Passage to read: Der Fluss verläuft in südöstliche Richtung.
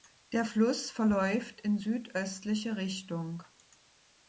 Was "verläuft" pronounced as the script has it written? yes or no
yes